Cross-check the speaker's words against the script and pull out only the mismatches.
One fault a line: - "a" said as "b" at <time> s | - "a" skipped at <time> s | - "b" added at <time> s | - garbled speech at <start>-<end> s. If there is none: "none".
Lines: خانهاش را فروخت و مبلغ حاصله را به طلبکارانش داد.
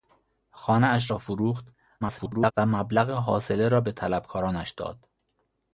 - garbled speech at 2.0-2.5 s